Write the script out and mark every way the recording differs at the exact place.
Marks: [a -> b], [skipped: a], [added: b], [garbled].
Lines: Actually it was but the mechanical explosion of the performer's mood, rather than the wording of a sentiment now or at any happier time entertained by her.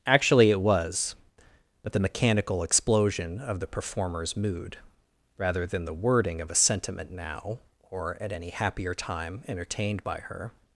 Actually it was but the mechanical explosion of the performer's mood, rather than the wording of a sentiment now or at any happier time entertained by her.